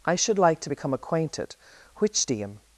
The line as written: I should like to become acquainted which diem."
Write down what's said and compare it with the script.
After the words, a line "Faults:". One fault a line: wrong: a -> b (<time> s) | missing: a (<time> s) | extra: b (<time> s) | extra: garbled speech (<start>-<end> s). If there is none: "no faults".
I should like to become acquainted which diem."
Faults:
no faults